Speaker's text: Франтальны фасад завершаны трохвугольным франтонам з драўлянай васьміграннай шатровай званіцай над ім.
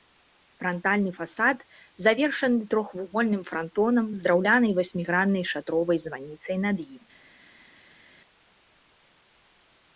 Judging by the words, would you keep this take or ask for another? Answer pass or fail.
pass